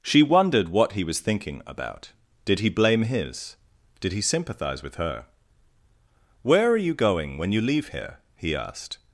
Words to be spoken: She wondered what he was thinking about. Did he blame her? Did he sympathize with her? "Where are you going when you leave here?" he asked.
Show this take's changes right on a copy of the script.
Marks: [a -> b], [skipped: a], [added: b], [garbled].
She wondered what he was thinking about. Did he blame [her? -> his] Did he sympathize with her? "Where are you going when you leave here?" he asked.